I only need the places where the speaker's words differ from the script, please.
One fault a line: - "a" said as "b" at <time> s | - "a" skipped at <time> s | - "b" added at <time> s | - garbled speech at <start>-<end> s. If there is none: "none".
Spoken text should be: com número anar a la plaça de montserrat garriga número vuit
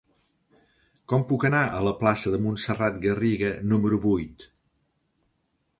- "número" said as "puc" at 1.3 s